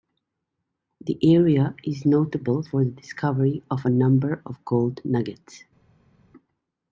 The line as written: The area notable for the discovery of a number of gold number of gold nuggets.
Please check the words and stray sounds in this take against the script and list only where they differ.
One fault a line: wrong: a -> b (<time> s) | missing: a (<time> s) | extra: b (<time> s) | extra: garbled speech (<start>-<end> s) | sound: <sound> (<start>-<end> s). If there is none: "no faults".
extra: is (1.8 s)
missing: number of gold (5.0 s)